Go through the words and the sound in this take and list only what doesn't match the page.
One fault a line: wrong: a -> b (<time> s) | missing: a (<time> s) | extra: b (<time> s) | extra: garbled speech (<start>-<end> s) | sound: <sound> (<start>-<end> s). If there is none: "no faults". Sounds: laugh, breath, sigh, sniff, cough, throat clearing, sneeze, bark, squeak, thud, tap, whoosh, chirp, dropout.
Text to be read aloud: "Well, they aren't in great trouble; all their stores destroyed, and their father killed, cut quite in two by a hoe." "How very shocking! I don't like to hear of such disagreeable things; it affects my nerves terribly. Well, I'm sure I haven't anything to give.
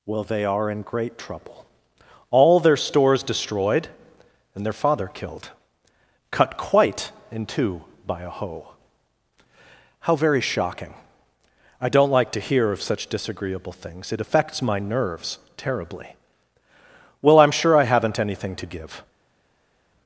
wrong: aren't -> are (0.5 s)